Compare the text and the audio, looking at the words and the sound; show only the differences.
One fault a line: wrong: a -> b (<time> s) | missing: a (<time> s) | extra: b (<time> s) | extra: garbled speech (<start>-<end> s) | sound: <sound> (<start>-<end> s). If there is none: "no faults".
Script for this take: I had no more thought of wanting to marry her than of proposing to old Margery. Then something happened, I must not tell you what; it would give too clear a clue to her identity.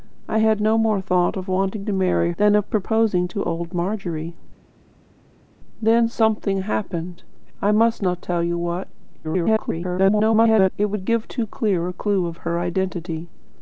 missing: her (2.3 s)
extra: garbled speech (9.2-10.7 s)